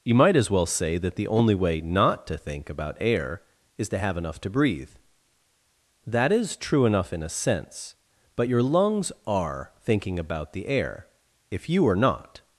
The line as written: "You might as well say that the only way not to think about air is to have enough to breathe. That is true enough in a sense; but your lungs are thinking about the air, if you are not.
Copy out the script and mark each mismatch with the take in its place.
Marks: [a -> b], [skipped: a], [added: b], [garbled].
"You might as well say that the only way not to think about air is to have enough to breathe. That is true enough in a sense; but your lungs are thinking about the air, if you are not.